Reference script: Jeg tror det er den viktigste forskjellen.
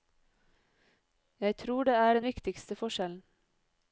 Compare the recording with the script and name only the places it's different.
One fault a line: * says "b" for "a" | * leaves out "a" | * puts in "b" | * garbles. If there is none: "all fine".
all fine